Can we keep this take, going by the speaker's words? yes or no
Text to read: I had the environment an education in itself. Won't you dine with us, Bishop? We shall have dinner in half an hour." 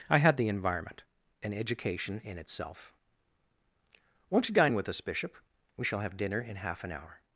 yes